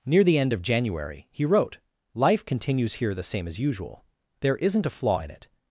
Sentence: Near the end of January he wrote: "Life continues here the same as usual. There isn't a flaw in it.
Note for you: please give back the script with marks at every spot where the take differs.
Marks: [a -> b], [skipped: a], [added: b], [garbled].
Near the end of January he wrote: "Life continues here the same as usual. There isn't a flaw in it.